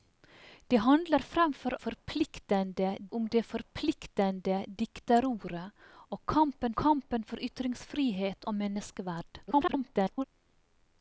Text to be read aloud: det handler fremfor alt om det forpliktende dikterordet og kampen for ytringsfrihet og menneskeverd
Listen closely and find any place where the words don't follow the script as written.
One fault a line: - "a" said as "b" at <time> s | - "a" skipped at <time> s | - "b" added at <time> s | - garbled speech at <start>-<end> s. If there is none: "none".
- "alt" said as "forpliktende" at 1.8 s
- "kampen" added at 6.8 s
- garbled speech at 9.5-10.3 s